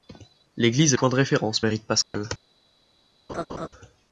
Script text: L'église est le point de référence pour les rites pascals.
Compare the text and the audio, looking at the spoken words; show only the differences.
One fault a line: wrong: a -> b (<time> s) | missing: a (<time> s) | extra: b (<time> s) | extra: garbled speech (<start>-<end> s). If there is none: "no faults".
missing: le (1.0 s)
missing: pour (1.6 s)